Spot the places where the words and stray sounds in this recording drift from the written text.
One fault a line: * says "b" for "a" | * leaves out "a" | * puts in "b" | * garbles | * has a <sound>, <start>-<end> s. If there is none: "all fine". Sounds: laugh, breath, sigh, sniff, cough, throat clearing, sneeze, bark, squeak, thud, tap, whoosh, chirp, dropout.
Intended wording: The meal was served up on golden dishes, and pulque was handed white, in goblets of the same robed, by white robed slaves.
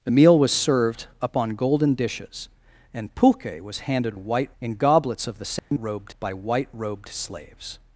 * has a dropout, 5.6-5.7 s